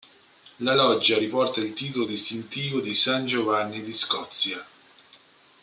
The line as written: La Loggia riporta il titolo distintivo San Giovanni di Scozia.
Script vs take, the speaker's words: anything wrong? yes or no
yes